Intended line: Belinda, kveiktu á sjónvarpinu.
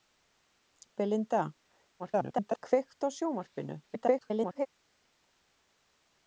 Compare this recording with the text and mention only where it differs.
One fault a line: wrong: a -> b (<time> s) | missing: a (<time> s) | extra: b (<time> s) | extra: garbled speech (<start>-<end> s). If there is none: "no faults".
extra: garbled speech (2.0-2.6 s)
extra: garbled speech (3.8-4.7 s)